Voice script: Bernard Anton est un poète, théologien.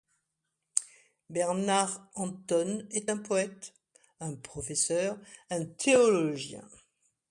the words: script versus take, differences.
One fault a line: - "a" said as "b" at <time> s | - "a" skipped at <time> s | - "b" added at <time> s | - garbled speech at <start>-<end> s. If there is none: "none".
- "un professeur un" added at 4.2 s